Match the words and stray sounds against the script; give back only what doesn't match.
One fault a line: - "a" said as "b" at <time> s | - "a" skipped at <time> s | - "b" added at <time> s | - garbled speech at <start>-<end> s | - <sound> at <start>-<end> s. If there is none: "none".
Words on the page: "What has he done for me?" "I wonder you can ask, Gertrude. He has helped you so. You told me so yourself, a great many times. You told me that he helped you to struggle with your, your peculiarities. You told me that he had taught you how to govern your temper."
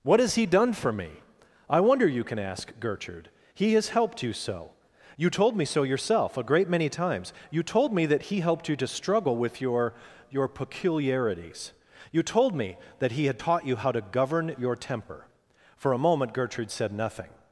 - "For a moment Gertrude said nothing" added at 15.8 s